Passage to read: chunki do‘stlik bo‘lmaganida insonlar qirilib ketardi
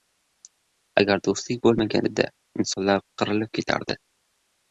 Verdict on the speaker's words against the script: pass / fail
fail